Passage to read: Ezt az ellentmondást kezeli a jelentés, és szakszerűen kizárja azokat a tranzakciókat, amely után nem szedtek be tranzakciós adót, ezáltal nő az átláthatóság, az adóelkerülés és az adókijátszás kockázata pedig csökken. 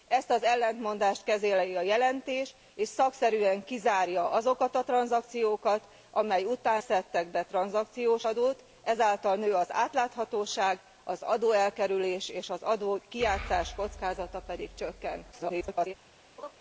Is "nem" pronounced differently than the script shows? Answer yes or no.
yes